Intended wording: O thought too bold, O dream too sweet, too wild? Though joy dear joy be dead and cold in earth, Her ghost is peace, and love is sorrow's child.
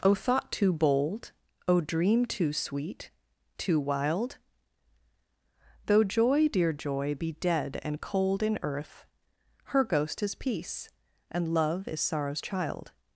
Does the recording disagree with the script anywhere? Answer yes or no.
no